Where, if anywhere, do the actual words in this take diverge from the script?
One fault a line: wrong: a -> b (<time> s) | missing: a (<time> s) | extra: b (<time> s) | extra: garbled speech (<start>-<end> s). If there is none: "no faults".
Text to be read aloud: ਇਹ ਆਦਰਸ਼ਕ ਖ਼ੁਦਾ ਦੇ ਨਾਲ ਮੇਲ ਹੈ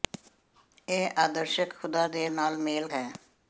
no faults